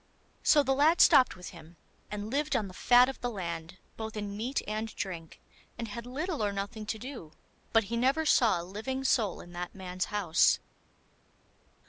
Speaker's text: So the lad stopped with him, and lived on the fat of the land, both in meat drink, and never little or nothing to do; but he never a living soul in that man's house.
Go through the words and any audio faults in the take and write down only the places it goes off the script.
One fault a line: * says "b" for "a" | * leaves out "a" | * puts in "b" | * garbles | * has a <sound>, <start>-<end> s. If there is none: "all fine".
* puts in "and"
* says "had" for "never"
* puts in "saw"